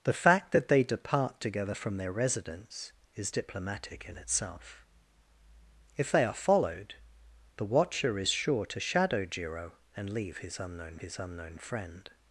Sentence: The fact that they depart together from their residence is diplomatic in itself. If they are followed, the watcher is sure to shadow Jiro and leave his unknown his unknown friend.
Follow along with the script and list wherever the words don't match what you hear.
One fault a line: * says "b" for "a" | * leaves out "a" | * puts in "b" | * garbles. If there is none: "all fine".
all fine